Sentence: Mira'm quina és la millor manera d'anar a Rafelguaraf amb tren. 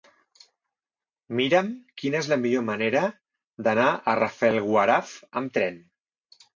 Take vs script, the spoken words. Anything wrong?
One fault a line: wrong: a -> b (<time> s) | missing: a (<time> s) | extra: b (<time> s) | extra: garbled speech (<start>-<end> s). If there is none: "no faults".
no faults